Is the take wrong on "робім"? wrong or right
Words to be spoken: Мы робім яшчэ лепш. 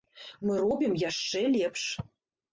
right